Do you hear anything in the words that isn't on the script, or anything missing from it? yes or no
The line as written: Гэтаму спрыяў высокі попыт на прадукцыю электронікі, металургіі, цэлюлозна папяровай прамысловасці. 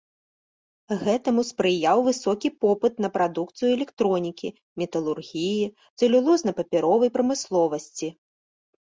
no